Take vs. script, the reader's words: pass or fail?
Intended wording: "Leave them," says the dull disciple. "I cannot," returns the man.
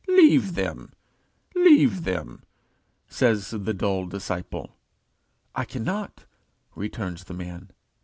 fail